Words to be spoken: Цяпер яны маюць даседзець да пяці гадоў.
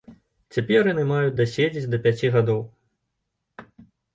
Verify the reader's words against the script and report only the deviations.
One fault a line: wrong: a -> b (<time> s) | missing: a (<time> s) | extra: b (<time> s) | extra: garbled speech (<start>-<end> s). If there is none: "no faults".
no faults